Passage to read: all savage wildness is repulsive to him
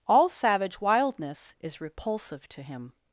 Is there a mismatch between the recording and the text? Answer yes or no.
no